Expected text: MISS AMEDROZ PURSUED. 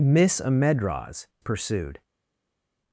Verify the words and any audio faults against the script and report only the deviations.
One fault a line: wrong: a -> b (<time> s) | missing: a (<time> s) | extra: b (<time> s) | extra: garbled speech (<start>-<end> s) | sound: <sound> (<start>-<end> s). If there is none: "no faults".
no faults